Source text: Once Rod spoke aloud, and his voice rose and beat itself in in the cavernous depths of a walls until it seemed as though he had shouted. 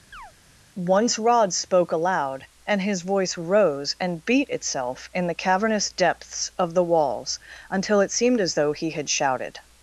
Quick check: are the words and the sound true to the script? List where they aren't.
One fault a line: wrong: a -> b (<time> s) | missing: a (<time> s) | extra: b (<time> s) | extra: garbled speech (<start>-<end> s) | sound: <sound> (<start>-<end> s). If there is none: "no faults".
sound: chirp (0.1-0.3 s)
missing: in (5.3 s)
wrong: a -> the (6.7 s)